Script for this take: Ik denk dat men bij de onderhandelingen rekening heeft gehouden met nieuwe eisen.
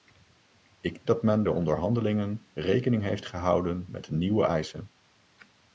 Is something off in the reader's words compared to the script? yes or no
yes